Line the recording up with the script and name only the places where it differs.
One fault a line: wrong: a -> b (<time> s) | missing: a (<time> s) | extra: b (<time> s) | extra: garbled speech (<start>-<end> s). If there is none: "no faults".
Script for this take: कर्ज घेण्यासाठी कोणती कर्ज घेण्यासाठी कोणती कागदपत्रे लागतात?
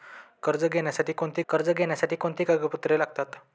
no faults